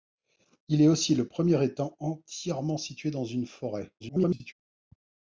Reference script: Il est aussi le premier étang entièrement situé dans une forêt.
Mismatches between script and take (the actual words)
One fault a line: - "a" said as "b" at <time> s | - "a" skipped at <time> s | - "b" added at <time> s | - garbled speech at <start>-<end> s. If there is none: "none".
- garbled speech at 4.0-4.5 s